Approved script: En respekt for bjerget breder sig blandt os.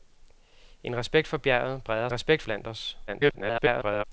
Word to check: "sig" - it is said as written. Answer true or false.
false